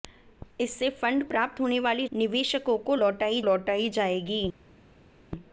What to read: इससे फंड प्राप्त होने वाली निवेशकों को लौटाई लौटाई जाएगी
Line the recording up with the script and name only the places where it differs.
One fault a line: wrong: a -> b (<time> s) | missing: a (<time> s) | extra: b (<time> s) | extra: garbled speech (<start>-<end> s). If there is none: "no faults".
no faults